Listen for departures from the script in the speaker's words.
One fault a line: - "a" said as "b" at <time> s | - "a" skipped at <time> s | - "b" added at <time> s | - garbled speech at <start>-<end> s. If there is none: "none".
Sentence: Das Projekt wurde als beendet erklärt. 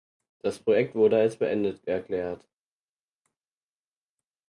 none